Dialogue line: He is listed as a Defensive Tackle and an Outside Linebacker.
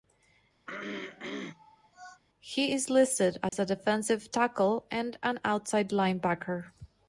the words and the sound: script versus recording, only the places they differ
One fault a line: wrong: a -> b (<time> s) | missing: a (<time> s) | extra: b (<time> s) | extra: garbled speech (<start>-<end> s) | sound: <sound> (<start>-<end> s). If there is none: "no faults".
sound: throat clearing (0.7-2.2 s)
sound: dropout (3.5-3.5 s)